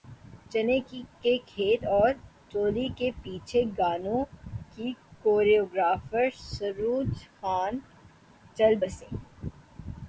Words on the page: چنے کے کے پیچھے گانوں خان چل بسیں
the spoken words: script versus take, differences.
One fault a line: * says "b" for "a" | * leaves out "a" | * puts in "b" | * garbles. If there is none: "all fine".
* puts in "کھیت اور چولی"
* puts in "کی کوریوگرافر سروج"